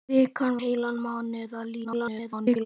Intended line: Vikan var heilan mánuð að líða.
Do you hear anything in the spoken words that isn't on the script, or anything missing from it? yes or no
yes